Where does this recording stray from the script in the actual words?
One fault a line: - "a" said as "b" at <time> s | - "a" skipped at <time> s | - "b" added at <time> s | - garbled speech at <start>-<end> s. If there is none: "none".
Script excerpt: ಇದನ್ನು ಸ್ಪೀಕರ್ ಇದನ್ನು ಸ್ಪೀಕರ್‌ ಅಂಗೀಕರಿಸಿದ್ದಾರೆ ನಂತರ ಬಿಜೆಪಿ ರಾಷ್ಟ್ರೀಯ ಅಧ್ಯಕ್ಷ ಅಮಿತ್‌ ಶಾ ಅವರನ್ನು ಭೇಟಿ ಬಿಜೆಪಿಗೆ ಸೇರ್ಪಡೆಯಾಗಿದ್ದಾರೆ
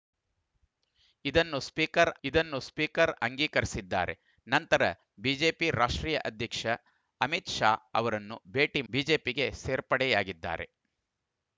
none